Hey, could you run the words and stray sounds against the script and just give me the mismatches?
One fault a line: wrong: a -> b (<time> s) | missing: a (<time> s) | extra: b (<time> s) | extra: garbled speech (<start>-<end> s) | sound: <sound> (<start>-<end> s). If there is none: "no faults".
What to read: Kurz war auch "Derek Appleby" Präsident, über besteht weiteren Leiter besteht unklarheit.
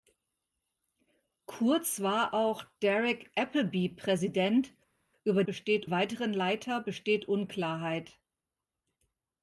no faults